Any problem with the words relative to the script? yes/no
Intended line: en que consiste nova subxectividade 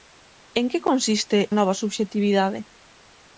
no